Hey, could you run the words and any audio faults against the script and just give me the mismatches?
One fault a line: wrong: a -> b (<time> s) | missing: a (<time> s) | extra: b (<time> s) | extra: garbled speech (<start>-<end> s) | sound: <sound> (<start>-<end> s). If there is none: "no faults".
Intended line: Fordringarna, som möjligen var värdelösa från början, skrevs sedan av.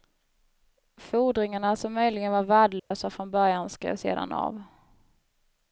sound: dropout (2.8-2.9 s)